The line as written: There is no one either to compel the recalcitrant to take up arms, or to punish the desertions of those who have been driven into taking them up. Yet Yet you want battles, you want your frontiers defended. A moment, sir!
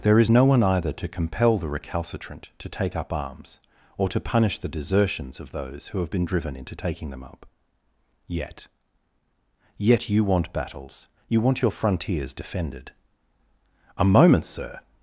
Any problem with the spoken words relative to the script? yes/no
no